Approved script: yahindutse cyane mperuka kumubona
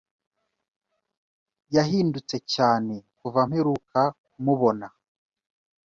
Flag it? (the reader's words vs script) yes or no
yes